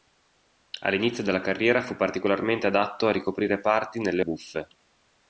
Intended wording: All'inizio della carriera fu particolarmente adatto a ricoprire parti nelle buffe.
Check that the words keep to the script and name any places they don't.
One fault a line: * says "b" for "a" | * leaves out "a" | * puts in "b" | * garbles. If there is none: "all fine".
all fine